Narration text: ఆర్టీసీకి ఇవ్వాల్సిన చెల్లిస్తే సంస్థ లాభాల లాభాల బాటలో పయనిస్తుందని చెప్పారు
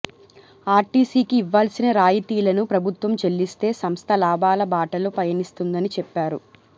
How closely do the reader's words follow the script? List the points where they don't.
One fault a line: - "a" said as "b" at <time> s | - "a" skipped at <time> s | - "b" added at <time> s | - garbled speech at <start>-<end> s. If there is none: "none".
- "రాయితీలను ప్రభుత్వం" added at 2.0 s
- "లాభాల" skipped at 4.6 s